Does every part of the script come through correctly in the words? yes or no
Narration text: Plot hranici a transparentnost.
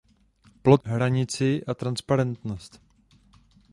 yes